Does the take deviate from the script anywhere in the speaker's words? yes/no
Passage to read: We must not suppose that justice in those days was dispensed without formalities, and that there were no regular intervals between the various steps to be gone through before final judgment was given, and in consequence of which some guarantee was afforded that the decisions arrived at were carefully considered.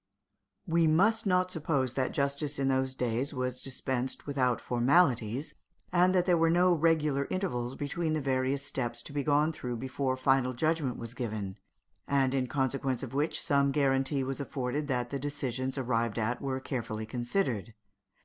no